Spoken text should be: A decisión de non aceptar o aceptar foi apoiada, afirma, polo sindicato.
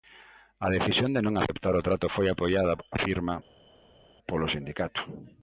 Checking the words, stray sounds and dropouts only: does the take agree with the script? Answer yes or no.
no